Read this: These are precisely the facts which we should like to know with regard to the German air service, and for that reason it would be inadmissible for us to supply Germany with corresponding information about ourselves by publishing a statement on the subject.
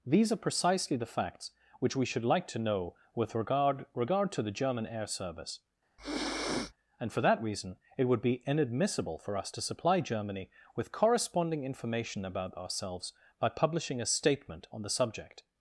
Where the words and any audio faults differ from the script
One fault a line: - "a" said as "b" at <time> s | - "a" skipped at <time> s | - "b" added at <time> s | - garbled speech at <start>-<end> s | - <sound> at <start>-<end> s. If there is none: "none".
- "regard" added at 3.9 s
- sniff at 6.0-6.7 s